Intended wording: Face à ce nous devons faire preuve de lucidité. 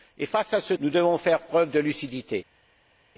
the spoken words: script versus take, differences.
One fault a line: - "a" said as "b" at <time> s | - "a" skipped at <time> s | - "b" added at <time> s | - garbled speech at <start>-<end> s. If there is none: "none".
none